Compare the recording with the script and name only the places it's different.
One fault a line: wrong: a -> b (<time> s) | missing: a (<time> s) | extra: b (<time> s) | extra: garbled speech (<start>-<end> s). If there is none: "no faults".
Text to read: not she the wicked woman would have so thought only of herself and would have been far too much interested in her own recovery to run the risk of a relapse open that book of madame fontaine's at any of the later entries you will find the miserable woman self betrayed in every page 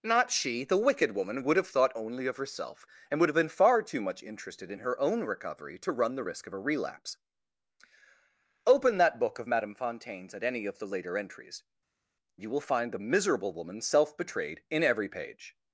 missing: so (1.7 s)